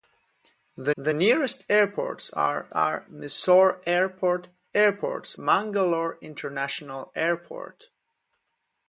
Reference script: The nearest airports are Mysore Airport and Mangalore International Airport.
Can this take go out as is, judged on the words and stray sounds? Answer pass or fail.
fail